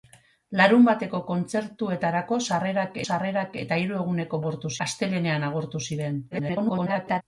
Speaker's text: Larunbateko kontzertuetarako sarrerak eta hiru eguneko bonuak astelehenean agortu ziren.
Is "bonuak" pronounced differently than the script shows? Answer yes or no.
yes